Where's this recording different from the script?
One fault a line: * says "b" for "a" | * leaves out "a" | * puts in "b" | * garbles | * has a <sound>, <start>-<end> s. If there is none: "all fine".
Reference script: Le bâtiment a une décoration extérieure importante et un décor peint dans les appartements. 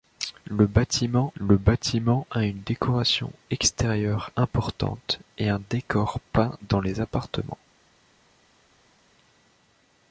* puts in "le bâtiment"